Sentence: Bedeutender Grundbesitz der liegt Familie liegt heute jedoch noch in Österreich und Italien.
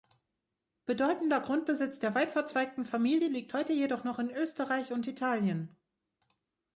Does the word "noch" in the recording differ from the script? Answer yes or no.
no